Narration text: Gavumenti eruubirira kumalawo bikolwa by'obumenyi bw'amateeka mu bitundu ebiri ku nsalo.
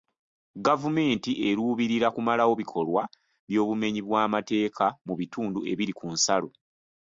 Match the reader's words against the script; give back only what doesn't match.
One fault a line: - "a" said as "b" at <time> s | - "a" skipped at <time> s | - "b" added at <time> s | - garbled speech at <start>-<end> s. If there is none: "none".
none